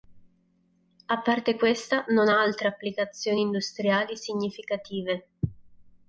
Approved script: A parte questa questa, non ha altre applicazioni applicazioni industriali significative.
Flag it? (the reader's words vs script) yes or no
yes